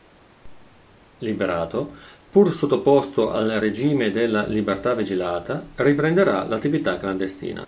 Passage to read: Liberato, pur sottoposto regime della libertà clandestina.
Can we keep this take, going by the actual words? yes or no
no